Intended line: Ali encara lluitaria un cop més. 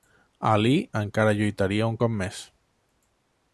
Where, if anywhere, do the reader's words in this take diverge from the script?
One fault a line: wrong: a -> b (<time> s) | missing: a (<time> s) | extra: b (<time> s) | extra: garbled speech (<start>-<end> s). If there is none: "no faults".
no faults